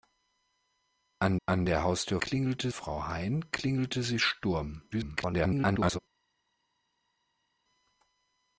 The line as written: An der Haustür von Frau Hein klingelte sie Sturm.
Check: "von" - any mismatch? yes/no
yes